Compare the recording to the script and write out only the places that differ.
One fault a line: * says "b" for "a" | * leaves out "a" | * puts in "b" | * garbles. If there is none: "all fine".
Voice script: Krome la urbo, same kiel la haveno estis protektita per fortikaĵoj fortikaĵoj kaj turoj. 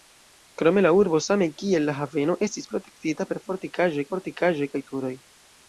all fine